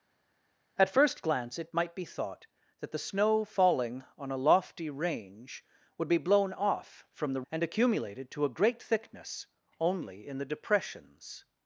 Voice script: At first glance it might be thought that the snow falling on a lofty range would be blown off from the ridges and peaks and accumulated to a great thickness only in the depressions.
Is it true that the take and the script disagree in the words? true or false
true